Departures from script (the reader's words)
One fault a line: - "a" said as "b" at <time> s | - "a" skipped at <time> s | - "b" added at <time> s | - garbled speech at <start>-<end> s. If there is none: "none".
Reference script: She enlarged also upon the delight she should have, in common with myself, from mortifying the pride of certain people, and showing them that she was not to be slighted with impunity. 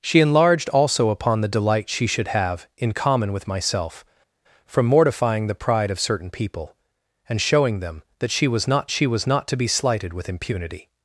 - "she was not" added at 8.9 s